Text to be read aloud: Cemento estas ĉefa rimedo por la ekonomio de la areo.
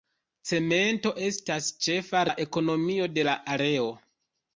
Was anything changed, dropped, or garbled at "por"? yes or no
yes